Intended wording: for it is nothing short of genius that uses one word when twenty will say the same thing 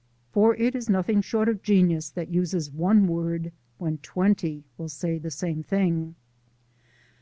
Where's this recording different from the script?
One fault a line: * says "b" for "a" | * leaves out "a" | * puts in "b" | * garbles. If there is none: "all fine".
all fine